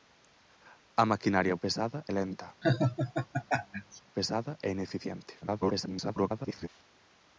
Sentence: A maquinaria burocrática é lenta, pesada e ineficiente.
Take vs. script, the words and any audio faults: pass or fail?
fail